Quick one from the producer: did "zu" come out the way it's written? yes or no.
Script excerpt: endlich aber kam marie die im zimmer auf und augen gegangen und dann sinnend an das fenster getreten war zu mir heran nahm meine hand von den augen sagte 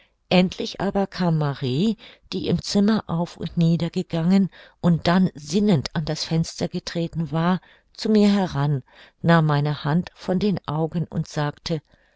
yes